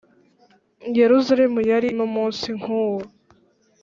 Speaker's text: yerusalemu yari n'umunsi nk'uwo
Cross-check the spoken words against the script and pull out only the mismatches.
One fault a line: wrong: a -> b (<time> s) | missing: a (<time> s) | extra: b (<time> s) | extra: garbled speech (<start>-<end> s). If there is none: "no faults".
no faults